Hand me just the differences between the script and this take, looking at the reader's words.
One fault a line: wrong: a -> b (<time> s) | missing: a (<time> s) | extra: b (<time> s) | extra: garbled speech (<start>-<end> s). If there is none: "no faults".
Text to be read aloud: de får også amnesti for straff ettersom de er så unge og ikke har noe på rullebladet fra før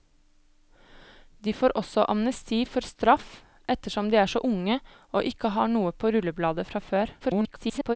extra: garbled speech (7.2-8.0 s)